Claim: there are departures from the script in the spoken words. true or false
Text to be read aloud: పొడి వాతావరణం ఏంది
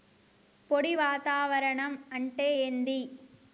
true